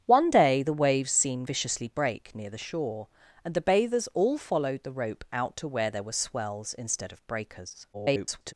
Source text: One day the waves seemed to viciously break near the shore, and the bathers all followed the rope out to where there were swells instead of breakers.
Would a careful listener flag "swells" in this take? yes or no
no